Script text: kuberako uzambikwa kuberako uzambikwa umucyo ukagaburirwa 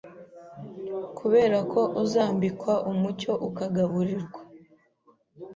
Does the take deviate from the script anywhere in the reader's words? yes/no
yes